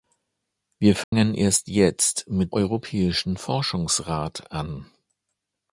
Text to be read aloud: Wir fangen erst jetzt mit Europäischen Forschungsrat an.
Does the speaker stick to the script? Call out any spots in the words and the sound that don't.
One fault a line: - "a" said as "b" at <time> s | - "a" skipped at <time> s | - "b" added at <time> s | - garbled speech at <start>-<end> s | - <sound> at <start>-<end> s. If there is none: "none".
- dropout at 1.0-1.1 s